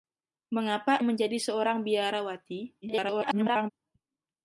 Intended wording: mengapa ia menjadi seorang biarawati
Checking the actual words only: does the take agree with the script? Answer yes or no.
no